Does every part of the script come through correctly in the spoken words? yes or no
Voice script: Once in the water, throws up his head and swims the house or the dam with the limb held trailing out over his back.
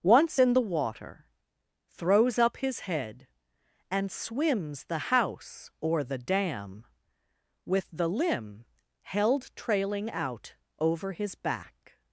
yes